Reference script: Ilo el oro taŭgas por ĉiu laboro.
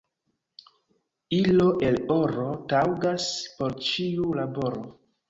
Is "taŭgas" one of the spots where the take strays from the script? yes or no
no